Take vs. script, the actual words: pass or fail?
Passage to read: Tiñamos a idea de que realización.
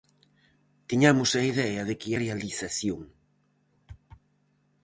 pass